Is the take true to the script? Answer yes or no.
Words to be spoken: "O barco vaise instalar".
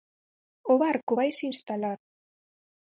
yes